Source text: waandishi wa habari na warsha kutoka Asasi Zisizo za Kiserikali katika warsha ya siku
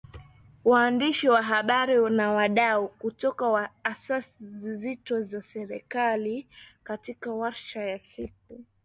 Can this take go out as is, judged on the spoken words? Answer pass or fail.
fail